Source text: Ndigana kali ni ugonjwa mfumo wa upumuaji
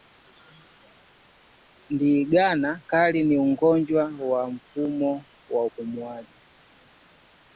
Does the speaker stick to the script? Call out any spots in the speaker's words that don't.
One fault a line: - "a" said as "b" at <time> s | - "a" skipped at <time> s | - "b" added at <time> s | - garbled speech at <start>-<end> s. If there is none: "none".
- "wa" added at 4.3 s